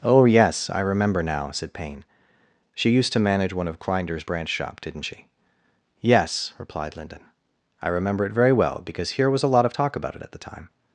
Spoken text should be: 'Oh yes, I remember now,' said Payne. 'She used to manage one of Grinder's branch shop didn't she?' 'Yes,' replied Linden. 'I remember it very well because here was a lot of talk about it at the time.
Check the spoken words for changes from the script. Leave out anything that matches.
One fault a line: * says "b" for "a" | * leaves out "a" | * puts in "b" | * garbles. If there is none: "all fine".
all fine